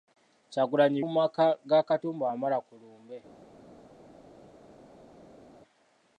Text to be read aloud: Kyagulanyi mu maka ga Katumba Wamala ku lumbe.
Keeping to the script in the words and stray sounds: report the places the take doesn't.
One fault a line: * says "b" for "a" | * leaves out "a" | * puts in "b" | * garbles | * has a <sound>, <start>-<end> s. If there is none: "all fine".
all fine